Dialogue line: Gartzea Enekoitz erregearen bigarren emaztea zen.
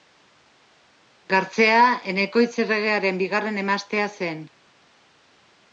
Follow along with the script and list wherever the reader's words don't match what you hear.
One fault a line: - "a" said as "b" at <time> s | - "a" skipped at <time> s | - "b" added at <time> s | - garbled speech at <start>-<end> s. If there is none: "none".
none